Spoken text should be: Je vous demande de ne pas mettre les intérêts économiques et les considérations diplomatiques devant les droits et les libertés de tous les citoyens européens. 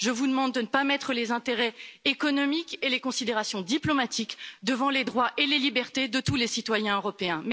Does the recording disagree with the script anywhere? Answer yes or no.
no